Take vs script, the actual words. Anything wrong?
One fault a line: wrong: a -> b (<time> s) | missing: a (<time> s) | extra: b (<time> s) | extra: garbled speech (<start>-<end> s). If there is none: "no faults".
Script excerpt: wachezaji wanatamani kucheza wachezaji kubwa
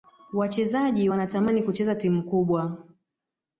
wrong: wachezaji -> timu (1.9 s)